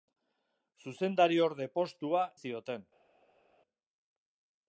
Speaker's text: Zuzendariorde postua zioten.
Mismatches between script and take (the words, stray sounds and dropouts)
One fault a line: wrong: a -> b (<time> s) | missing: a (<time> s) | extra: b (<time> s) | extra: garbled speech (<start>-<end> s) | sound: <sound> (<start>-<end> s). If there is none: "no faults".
no faults